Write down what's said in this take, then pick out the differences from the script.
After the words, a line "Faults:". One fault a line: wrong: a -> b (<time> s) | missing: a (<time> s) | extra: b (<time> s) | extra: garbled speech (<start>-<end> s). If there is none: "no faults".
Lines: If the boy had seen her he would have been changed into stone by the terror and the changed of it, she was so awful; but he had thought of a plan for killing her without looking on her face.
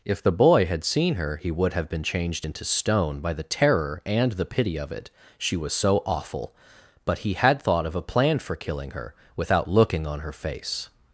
If the boy had seen her he would have been changed into stone by the terror and the pity of it, she was so awful; but he had thought of a plan for killing her without looking on her face.
Faults:
wrong: changed -> pity (4.5 s)